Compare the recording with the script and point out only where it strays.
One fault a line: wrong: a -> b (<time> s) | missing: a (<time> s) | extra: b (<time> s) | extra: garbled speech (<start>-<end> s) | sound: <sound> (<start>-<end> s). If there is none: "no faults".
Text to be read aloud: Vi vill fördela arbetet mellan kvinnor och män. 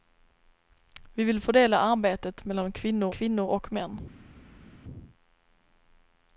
extra: kvinnor (3.1 s)